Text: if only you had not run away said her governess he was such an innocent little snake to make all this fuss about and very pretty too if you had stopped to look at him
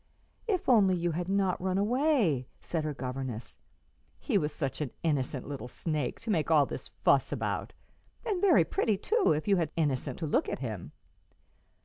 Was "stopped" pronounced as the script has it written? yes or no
no